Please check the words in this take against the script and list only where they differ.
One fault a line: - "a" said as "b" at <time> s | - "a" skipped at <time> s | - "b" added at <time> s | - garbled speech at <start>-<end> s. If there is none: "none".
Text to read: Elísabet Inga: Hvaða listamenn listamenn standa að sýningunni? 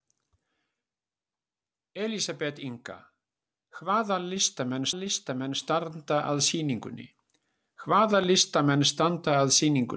none